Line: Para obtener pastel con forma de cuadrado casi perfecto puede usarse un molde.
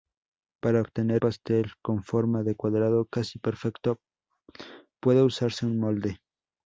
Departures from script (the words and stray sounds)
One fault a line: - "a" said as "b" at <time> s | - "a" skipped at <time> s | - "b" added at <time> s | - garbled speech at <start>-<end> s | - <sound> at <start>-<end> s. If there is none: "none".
none